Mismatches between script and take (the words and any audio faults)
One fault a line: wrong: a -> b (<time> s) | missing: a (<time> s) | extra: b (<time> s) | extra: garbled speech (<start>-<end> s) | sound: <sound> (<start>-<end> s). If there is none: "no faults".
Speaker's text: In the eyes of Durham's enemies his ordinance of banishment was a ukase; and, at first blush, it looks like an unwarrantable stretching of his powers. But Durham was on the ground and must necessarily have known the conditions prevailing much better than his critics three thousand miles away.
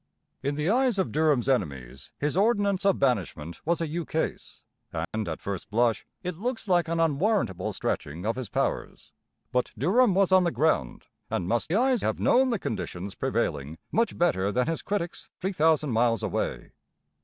sound: dropout (5.0-5.1 s)
wrong: necessarily -> eyes (11.7 s)